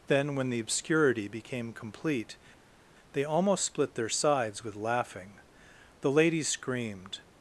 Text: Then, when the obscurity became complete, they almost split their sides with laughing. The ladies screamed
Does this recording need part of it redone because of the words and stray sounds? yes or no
no